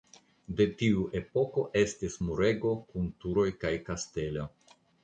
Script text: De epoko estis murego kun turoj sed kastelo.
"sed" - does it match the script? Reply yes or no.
no